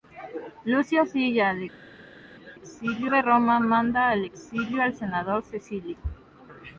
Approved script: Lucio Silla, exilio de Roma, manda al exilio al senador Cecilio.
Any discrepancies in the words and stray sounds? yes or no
no